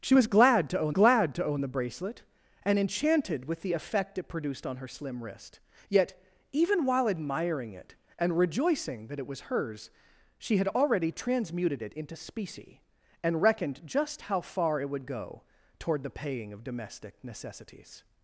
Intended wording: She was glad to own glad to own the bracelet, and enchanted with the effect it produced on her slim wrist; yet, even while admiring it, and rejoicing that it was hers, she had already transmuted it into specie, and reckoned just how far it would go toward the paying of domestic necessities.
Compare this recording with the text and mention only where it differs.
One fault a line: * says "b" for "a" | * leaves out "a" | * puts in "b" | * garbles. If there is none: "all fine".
all fine